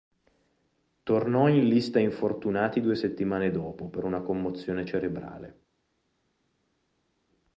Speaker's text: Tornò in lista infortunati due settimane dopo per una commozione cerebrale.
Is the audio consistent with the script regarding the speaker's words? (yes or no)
yes